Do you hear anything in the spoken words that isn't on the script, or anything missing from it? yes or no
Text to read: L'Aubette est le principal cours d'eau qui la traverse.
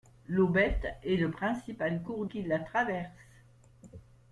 yes